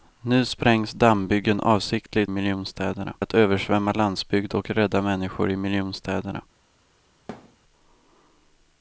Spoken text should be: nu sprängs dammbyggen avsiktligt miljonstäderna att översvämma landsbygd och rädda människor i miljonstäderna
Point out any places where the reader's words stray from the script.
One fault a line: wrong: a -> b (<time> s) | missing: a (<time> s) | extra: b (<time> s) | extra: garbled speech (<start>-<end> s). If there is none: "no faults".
no faults